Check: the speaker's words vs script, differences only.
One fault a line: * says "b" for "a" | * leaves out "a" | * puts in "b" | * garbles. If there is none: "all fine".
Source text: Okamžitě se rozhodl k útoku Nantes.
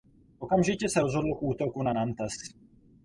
* puts in "na"